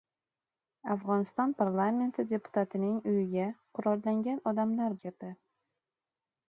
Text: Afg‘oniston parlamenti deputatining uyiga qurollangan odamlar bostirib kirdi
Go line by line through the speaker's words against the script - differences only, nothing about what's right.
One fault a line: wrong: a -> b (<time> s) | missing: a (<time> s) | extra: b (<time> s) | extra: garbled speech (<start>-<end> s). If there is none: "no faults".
missing: bostirib (5.0 s)